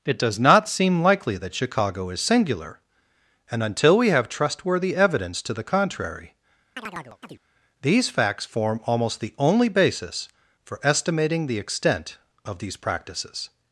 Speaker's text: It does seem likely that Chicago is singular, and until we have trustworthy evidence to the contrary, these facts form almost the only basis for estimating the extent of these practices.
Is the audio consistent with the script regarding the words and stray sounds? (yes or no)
no